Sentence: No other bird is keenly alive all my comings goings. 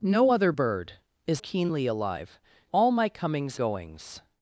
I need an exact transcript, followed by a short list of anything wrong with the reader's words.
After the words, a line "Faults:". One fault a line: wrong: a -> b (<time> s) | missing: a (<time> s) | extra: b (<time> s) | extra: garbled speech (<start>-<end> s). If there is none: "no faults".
No other bird is keenly alive all my comings goings.
Faults:
no faults